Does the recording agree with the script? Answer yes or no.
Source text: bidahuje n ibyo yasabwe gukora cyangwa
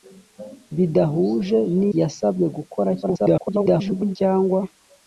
no